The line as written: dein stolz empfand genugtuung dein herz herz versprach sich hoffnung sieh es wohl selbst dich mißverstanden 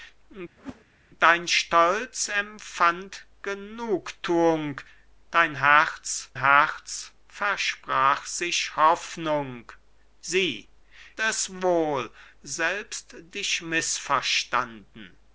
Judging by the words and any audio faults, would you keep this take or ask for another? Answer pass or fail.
fail